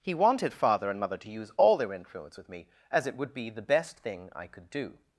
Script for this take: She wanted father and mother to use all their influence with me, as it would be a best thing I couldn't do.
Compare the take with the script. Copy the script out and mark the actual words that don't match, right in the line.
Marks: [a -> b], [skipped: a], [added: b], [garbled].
[She -> He] wanted father and mother to use all their influence with me, as it would be [a -> the] best thing I [couldn't -> could] do.